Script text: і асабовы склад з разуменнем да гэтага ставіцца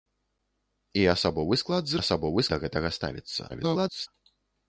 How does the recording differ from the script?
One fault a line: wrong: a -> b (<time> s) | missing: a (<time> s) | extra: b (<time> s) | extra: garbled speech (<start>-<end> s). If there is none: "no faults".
wrong: разуменнем -> асабовы (2.0 s)
extra: garbled speech (3.5-4.1 s)